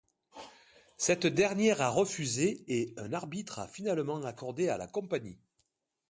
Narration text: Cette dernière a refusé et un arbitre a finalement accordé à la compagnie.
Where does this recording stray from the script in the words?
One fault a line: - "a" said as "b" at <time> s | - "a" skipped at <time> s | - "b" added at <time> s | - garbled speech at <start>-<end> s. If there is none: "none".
none